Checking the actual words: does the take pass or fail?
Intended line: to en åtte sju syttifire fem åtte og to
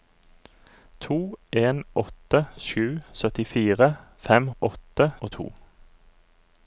pass